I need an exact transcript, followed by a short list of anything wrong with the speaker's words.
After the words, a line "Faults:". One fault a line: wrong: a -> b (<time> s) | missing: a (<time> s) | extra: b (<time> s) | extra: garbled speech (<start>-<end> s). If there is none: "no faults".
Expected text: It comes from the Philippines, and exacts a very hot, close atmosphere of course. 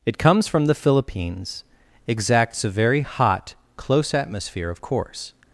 It comes from the Philippines, exacts a very hot, close atmosphere of course.
Faults:
missing: and (1.6 s)